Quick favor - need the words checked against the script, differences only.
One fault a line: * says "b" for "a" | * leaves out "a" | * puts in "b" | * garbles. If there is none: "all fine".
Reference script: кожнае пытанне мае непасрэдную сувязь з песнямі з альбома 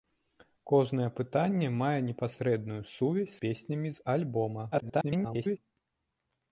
* leaves out "з"
* garbles